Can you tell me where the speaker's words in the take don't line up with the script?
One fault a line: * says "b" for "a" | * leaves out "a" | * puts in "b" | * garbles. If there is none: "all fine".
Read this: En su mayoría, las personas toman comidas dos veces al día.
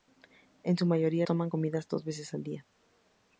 * leaves out "las personas"